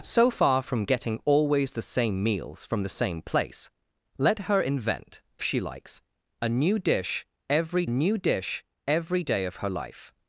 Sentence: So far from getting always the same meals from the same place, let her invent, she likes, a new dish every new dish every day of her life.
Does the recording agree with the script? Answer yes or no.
yes